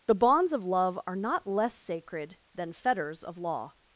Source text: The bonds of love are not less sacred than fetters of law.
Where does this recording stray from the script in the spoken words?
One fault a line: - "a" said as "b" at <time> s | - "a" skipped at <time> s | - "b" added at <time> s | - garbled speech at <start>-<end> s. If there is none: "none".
none